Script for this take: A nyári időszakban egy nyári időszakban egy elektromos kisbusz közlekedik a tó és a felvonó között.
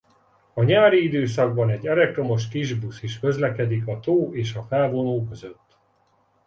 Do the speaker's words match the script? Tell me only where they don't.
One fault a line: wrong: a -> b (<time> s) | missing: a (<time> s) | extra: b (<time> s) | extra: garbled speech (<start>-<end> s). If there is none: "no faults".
missing: nyári időszakban egy (1.9 s)
extra: is (3.0 s)